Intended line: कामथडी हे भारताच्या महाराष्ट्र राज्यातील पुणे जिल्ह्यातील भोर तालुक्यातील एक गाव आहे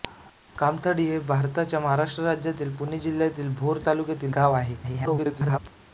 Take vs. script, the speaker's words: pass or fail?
fail